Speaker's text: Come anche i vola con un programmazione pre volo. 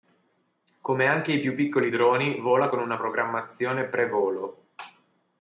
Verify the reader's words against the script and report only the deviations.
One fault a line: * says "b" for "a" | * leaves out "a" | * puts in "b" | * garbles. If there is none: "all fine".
* puts in "più piccoli droni"
* says "una" for "un"